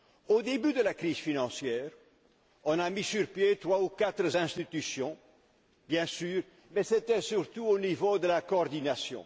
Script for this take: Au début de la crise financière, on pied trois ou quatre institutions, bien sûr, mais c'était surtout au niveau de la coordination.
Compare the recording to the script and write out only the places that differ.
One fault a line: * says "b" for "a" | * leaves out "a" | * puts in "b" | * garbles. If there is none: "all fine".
* puts in "a mis sur"